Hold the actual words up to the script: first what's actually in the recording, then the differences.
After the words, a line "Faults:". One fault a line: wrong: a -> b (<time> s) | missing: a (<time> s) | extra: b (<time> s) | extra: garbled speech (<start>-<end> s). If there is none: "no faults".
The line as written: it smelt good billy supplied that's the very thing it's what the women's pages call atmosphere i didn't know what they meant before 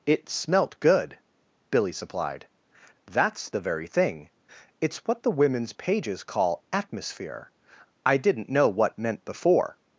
it smelt good billy supplied that's the very thing it's what the women's pages call atmosphere i didn't know what meant before
Faults:
missing: they (9.0 s)